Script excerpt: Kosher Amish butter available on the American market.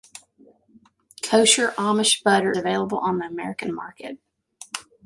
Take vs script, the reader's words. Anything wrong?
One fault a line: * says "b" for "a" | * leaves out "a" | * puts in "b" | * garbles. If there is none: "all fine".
all fine